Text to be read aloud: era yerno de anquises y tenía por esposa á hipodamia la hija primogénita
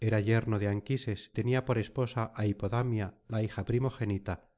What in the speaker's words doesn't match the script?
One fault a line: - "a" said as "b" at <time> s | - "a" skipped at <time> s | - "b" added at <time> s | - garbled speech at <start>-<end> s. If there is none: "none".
- "y" skipped at 1.3 s